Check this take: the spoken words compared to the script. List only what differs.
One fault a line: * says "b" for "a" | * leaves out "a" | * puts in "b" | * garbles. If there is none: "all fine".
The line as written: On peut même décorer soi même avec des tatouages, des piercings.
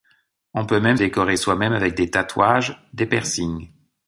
all fine